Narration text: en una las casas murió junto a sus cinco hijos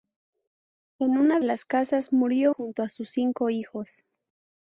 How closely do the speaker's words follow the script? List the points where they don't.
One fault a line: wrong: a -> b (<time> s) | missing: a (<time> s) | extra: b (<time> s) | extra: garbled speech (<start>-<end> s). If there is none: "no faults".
no faults